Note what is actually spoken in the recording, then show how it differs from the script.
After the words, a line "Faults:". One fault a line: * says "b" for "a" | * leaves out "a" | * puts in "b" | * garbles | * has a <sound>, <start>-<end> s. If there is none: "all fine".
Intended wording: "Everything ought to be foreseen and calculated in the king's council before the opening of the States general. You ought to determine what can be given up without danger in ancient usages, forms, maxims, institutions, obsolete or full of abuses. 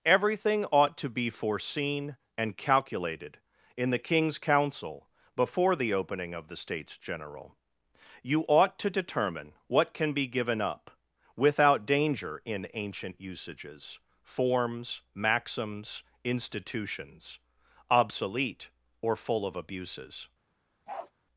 "Everything ought to be foreseen and calculated in the king's council before the opening of the States general. You ought to determine what can be given up without danger in ancient usages, forms, maxims, institutions, obsolete or full of abuses.
Faults:
* has a bark, 20.9-21.1 s